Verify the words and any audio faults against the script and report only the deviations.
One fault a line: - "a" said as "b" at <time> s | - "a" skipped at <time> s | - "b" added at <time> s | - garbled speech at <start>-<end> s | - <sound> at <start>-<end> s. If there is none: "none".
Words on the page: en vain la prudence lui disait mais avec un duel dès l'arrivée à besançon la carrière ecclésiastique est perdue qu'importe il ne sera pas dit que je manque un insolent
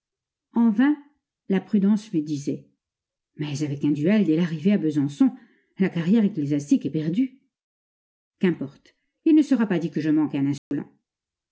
- dropout at 10.6-10.7 s